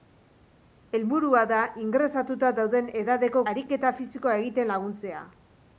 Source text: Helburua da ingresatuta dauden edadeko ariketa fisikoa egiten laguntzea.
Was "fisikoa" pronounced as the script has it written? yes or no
yes